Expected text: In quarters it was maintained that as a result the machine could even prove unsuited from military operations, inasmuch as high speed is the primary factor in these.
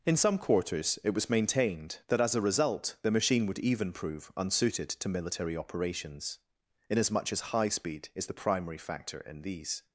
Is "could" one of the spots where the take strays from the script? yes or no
yes